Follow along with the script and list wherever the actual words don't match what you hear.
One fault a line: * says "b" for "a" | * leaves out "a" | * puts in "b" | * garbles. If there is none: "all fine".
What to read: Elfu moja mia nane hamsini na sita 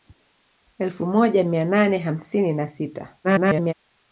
* garbles